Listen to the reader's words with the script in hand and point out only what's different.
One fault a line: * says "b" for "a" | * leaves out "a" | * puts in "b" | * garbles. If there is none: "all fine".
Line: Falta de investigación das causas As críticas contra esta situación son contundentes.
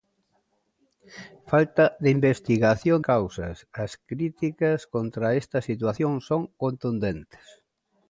* leaves out "das"